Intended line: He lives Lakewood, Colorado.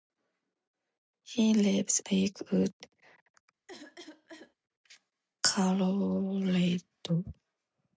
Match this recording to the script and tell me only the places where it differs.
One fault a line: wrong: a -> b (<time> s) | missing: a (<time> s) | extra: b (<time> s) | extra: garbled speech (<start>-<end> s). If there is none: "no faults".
no faults